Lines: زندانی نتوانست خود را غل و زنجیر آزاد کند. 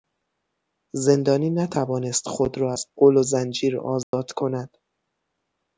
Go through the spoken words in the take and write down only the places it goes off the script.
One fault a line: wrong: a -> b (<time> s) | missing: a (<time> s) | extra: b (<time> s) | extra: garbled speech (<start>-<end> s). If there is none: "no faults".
extra: از (2.7 s)